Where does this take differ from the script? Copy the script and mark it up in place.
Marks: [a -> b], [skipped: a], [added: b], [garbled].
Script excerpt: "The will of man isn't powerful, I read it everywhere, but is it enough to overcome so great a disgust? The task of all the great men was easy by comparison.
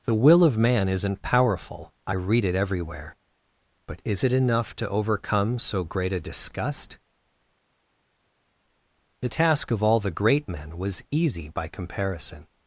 "The will of man isn't powerful, I read it everywhere, but is it enough to overcome so great a disgust? The task of all the great men was easy by comparison.